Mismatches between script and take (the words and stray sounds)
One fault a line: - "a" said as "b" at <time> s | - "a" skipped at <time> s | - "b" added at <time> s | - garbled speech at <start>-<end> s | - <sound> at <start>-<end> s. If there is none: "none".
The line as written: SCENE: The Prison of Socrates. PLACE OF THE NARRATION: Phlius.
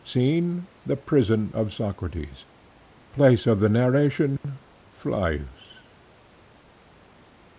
- dropout at 4.4-4.4 s